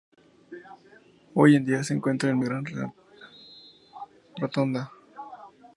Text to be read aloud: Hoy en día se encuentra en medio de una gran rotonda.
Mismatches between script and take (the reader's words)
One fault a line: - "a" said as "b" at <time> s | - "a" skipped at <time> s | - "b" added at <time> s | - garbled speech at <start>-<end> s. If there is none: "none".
- "medio de una" skipped at 2.4 s